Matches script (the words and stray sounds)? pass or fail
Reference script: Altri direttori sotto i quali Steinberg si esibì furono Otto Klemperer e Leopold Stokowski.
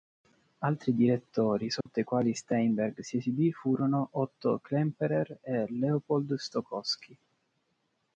fail